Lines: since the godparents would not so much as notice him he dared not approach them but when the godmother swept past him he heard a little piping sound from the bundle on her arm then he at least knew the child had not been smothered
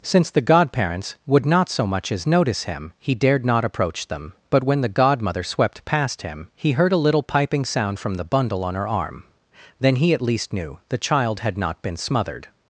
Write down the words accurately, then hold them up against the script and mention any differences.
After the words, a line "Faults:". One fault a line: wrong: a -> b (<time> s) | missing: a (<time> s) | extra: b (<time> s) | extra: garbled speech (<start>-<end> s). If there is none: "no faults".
since the godparents would not so much as notice him he dared not approach them but when the godmother swept past him he heard a little piping sound from the bundle on her arm then he at least knew the child had not been smothered
Faults:
no faults